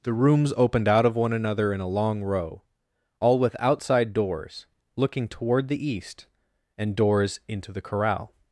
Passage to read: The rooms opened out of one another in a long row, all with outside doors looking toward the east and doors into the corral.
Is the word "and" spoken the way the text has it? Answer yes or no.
yes